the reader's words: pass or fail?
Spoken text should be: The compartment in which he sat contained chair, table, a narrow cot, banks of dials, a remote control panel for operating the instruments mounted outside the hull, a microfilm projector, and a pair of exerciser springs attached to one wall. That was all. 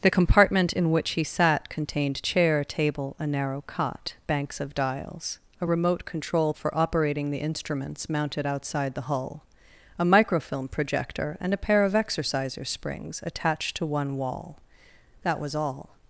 fail